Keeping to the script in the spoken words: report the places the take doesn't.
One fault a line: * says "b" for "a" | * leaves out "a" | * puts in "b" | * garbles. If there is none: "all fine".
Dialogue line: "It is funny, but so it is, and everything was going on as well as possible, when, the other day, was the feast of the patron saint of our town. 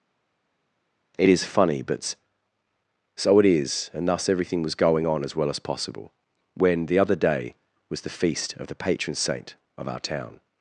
* puts in "thus"